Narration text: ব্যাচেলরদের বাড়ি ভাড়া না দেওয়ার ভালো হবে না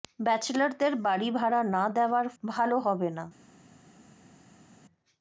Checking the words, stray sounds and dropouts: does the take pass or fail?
pass